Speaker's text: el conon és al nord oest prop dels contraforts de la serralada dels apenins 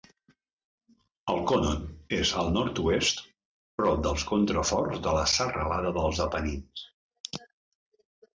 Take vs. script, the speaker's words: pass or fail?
pass